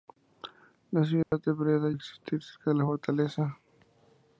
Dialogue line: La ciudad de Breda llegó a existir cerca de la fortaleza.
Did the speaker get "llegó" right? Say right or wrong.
wrong